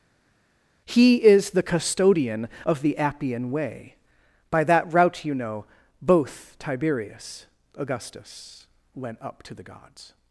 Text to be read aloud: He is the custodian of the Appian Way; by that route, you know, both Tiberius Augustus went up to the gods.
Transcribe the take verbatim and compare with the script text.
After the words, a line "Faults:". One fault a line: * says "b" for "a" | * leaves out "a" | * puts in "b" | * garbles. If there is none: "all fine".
He is the custodian of the Appian Way; by that route, you know, both Tiberius Augustus went up to the gods.
Faults:
all fine